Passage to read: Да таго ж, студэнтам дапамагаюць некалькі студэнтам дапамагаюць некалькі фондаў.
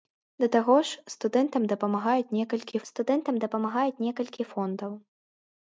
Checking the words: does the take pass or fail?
pass